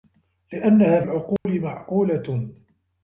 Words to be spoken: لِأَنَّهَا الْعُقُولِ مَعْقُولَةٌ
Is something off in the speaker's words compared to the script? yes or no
no